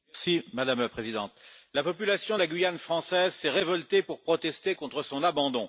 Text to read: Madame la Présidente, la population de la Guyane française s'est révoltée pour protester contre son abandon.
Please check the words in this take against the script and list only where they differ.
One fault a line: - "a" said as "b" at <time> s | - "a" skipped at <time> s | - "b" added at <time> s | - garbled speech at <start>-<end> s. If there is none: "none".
none